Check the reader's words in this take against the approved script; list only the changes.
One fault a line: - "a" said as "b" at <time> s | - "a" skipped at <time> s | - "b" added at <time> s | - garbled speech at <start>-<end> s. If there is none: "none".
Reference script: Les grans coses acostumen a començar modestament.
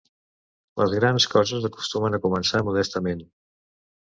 none